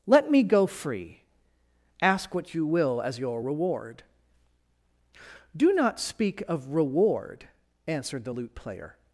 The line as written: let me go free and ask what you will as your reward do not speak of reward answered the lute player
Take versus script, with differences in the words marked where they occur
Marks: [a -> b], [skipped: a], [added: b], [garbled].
let me go free [skipped: and] ask what you will as your reward do not speak of reward answered the lute player